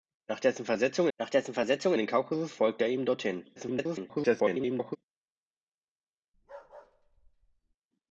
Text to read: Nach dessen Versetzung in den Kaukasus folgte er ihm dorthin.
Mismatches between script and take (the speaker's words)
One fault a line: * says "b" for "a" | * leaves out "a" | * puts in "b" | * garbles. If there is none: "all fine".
* puts in "nach dessen Versetzung"
* garbles